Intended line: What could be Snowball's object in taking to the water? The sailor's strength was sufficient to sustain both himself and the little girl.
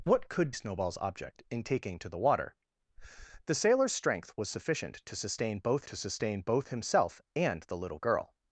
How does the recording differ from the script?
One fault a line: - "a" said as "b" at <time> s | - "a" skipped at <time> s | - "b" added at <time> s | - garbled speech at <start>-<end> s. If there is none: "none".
- "be" skipped at 0.5 s
- "to sustain both" added at 5.8 s